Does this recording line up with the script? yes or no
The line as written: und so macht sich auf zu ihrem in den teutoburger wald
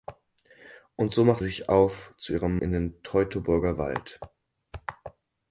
yes